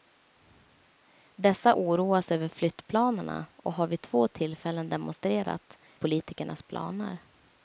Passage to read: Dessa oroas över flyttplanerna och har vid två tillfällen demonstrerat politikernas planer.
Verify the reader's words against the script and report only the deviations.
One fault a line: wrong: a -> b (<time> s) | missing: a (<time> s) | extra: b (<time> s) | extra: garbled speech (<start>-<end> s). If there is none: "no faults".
no faults